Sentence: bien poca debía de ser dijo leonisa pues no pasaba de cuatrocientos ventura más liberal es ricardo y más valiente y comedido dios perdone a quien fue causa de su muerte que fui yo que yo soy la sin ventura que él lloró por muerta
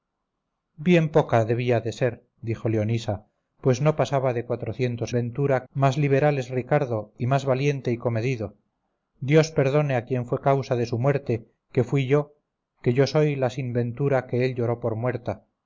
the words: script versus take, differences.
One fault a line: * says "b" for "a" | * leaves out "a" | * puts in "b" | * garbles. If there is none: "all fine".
all fine